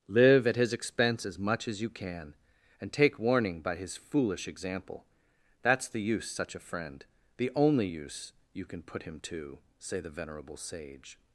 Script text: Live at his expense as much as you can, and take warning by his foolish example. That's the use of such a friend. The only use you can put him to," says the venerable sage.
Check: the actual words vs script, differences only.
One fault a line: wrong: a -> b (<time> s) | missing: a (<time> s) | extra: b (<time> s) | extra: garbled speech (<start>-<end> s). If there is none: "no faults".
missing: of (6.3 s)
wrong: says -> say (9.8 s)